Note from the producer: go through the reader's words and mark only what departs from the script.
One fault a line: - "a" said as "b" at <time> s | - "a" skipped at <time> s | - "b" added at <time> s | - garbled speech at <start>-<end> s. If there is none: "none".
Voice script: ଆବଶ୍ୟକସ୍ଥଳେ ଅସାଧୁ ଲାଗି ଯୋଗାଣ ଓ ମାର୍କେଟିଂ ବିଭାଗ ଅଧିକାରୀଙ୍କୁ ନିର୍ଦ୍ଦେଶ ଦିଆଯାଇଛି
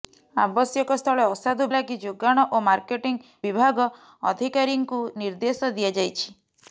none